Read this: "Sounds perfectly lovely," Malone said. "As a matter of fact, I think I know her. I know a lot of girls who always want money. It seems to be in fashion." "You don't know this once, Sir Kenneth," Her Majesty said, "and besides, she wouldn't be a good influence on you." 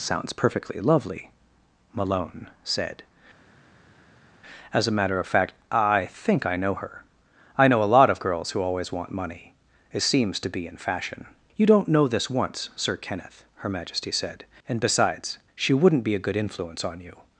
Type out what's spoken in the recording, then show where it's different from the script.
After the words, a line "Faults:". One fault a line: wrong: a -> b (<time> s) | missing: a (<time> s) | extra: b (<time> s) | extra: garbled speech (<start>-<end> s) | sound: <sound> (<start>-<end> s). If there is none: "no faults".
"Sounds perfectly lovely," Malone said. "As a matter of fact, I think I know her. I know a lot of girls who always want money. It seems to be in fashion." "You don't know this once, Sir Kenneth," Her Majesty said, "and besides, she wouldn't be a good influence on you."
Faults:
no faults